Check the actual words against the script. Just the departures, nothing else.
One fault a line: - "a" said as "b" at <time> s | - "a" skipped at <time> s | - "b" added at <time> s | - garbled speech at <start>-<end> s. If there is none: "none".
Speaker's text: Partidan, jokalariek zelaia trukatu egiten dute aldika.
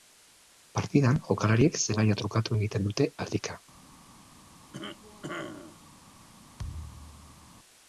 none